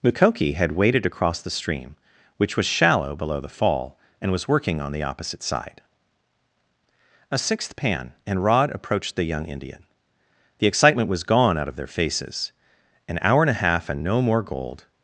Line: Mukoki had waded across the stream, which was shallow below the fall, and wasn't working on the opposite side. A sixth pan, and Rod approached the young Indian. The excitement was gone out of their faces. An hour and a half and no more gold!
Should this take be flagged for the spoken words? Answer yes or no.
yes